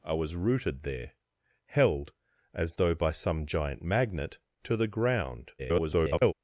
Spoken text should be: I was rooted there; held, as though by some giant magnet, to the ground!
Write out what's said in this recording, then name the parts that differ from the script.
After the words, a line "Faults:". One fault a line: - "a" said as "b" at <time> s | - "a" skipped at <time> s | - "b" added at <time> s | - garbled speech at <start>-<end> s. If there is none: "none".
I was rooted there; held, as though by some giant magnet, to the ground! [garbled]
Faults:
- garbled speech at 5.6-6.3 s